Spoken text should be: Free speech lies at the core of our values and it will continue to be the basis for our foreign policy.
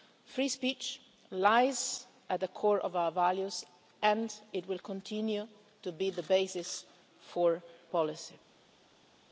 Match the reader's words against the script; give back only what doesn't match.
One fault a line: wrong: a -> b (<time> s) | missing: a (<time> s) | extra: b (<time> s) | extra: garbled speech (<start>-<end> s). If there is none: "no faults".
missing: our foreign (7.6 s)